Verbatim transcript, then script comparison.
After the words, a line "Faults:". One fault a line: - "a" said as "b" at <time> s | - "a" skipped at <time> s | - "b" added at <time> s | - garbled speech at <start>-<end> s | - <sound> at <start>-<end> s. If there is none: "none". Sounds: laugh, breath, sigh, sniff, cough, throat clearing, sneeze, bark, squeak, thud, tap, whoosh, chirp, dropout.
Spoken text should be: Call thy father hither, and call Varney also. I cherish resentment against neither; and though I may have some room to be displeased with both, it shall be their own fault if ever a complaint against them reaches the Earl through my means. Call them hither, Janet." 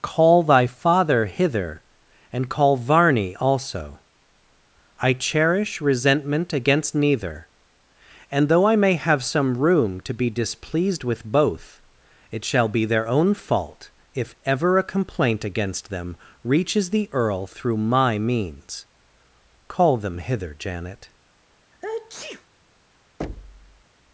Call thy father hither, and call Varney also. I cherish resentment against neither; and though I may have some room to be displeased with both, it shall be their own fault if ever a complaint against them reaches the Earl through my means. Call them hither, Janet."
Faults:
- sneeze at 21.7-22.5 s
- thud at 23.2-23.8 s